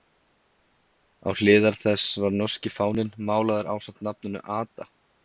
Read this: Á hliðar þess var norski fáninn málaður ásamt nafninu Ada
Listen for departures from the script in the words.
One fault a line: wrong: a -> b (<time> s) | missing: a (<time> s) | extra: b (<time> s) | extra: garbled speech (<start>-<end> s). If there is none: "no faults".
no faults